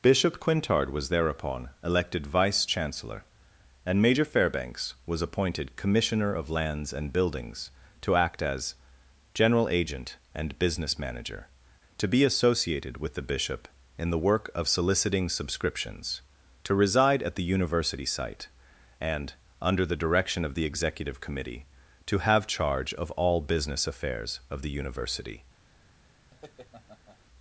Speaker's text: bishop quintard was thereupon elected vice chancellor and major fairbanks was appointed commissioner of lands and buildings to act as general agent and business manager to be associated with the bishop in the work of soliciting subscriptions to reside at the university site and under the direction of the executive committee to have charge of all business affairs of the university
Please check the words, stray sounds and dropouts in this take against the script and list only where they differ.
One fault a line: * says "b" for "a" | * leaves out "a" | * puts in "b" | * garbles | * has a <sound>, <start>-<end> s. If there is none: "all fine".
* has a laugh, 26.3-27.2 s